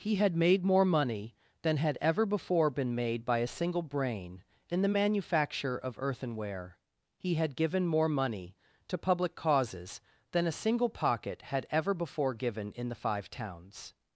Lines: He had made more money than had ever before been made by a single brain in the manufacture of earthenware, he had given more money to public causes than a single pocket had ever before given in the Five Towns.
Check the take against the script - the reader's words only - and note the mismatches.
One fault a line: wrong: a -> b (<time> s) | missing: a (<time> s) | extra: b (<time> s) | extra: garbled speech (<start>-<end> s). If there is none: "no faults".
no faults